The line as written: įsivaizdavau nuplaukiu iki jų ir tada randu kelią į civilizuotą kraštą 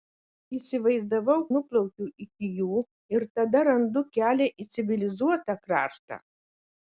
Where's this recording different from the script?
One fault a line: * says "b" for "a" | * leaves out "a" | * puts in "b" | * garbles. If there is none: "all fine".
all fine